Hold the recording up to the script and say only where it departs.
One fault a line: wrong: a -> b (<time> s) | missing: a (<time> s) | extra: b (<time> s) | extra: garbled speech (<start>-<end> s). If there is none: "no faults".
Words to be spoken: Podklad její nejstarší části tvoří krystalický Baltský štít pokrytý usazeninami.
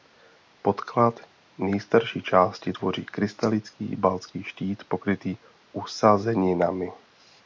missing: její (1.2 s)